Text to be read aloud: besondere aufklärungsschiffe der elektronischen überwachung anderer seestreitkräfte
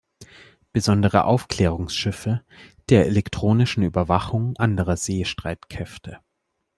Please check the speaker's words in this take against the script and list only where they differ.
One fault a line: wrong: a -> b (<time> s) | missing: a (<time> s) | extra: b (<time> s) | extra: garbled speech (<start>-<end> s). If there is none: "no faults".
no faults